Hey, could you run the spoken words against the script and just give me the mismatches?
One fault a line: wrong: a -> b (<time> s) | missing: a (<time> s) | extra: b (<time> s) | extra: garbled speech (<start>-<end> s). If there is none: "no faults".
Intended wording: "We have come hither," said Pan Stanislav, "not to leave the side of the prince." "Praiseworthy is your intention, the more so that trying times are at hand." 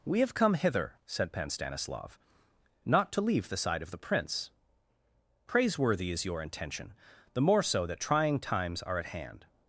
no faults